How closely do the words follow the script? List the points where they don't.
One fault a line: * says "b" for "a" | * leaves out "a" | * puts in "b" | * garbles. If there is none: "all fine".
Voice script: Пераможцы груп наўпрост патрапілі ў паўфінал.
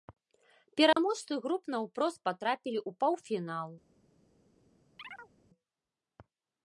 all fine